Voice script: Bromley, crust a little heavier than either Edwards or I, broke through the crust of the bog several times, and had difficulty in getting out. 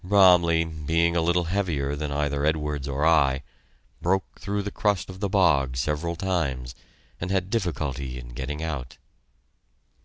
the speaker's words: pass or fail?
fail